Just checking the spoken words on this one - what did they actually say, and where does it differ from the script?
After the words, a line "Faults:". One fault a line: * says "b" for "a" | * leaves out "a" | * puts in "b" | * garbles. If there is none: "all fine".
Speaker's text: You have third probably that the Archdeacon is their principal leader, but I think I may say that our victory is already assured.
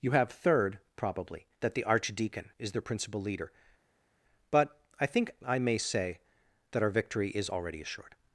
You have third probably that the Archdeacon is their principal leader, but I think I may say that our victory is already assured.
Faults:
all fine